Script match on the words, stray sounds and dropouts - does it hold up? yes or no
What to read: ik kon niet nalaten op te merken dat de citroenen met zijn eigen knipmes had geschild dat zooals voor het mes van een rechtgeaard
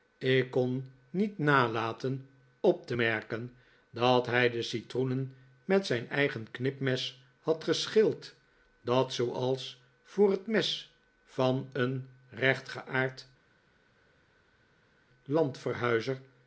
no